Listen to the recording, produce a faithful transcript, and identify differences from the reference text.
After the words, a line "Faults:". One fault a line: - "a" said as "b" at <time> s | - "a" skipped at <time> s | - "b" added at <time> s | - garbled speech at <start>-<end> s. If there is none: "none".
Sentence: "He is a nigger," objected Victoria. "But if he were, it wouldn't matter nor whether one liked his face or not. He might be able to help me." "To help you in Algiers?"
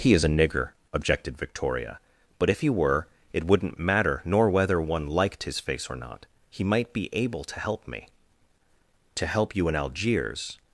"He is a nigger," objected Victoria. "But if he were, it wouldn't matter nor whether one liked his face or not. He might be able to help me." "To help you in Algiers?"
Faults:
none